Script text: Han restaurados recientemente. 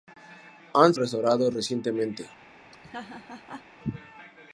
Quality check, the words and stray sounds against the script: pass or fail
fail